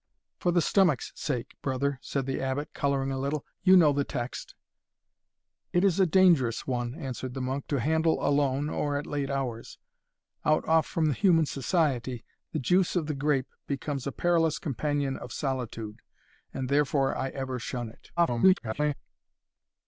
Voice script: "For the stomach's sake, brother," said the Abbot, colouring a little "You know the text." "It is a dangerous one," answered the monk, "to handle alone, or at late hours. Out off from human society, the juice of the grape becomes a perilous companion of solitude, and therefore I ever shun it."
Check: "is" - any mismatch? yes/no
no